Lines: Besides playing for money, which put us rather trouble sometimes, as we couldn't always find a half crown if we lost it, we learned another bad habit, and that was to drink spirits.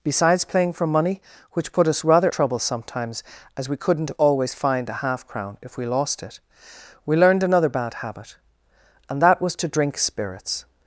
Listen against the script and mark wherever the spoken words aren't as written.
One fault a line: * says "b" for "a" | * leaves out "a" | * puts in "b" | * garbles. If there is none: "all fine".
all fine